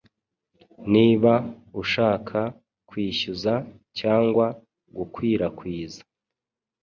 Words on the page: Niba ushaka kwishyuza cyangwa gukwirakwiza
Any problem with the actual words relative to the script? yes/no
no